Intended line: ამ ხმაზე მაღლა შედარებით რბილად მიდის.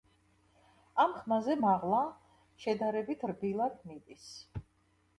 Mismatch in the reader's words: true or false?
false